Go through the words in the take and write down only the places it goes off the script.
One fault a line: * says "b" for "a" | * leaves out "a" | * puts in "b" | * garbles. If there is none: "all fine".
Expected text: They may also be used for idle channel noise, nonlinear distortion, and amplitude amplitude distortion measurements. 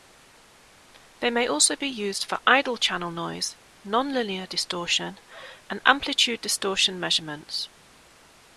* leaves out "amplitude"